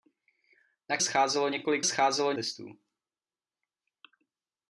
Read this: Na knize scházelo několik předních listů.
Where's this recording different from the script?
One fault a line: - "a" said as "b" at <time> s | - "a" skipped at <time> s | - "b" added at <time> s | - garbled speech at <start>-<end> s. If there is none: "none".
- "knize" skipped at 1.0 s
- "předních" said as "scházelo" at 1.8 s